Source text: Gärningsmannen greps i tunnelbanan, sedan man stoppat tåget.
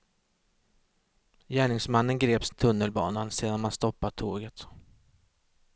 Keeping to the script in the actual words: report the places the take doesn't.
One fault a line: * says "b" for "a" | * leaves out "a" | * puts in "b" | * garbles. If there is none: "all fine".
all fine